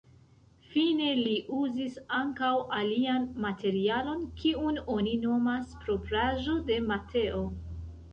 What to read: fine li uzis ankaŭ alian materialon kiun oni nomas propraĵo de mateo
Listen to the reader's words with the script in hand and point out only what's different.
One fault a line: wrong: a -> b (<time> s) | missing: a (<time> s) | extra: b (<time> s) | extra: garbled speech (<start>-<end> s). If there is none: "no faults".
no faults